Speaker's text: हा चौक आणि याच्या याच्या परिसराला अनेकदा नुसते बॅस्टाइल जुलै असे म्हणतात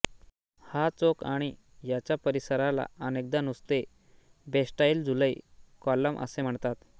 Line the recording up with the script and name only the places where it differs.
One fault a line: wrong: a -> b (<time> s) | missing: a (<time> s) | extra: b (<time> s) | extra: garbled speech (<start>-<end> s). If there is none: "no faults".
missing: याच्या (2.1 s)
extra: कॉलम (5.8 s)